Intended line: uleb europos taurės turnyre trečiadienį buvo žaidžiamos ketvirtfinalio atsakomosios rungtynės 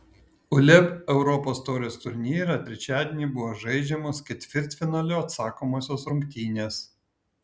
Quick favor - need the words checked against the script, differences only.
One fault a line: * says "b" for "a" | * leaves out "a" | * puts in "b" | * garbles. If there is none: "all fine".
all fine